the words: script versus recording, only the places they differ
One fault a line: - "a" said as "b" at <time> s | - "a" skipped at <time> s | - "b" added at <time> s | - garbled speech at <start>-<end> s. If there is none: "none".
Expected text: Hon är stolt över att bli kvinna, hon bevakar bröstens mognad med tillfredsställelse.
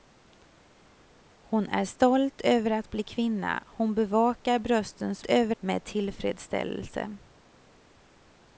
- "mognad" said as "över" at 5.3 s